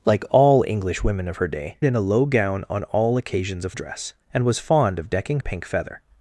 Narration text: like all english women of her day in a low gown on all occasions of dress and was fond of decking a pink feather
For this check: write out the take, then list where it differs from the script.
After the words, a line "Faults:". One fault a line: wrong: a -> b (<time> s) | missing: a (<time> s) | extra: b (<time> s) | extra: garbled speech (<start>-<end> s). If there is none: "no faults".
like all english women of her day in a low gown on all occasions of dress and was fond of decking a pink feather
Faults:
no faults